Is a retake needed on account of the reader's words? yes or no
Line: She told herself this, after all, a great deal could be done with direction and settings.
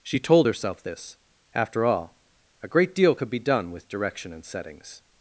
no